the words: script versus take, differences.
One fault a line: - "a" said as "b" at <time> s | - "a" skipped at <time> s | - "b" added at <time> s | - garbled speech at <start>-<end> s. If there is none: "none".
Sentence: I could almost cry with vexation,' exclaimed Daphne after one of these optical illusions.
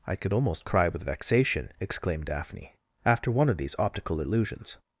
none